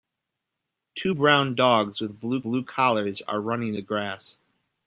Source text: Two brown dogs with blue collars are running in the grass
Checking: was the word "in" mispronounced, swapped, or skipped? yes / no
yes